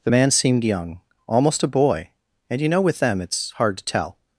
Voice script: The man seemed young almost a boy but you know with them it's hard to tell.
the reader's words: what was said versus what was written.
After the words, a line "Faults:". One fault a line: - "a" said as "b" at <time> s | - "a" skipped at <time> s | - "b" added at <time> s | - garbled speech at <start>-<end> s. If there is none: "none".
The man seemed young almost a boy and you know with them it's hard to tell.
Faults:
- "but" said as "and" at 2.5 s